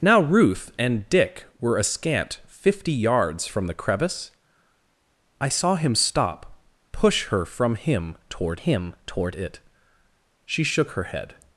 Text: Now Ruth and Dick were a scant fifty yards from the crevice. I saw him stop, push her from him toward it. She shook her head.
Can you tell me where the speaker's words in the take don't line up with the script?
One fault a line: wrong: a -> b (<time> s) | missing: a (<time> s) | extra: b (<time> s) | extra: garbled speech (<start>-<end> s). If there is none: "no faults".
extra: him toward (8.5 s)